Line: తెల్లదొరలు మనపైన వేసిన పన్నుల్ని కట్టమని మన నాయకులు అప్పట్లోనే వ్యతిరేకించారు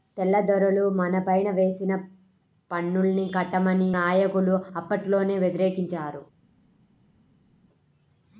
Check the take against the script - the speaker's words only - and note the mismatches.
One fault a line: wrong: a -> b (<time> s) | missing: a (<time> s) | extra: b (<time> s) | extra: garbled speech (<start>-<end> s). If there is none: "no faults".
missing: మన (3.9 s)